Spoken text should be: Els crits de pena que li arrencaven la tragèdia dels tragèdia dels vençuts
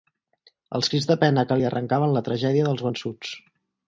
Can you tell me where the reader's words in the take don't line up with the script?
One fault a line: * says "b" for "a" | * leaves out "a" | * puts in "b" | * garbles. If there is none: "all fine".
* leaves out "tragèdia dels"